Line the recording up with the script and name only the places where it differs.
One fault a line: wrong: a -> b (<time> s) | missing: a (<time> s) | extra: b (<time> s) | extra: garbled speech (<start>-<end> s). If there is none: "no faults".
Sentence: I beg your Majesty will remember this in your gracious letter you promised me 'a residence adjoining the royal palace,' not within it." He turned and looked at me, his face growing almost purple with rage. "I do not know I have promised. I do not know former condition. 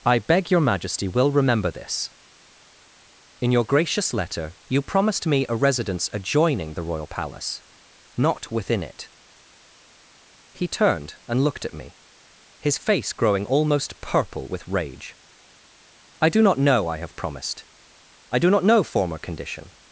no faults